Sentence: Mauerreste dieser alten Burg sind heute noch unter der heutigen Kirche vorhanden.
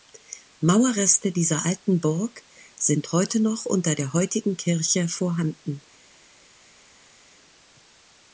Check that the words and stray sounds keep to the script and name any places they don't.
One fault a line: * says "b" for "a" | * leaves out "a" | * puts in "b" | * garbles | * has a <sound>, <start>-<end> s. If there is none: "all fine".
all fine